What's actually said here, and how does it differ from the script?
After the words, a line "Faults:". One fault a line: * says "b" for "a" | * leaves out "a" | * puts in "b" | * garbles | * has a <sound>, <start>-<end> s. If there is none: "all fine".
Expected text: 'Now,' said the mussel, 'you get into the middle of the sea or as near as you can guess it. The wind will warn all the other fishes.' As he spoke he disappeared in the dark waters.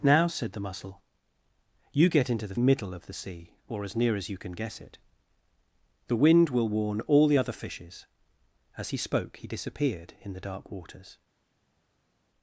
'Now,' said the mussel, 'you get into the middle of the sea or as near as you can guess it. The wind will warn all the other fishes.' As he spoke he disappeared in the dark waters.
Faults:
all fine